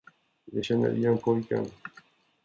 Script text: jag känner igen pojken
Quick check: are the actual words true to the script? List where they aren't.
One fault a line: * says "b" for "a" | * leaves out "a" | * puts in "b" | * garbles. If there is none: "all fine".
all fine